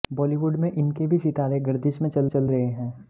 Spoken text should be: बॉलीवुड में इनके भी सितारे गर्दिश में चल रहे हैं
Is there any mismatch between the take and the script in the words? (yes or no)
yes